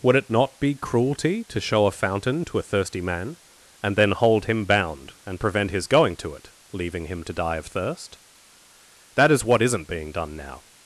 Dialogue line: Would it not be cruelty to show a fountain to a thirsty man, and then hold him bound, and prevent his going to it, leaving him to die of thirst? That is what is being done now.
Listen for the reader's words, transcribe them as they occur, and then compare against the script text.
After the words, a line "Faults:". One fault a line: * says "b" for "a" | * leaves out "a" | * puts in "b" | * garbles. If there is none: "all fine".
Would it not be cruelty to show a fountain to a thirsty man, and then hold him bound, and prevent his going to it, leaving him to die of thirst? That is what isn't being done now.
Faults:
* says "isn't" for "is"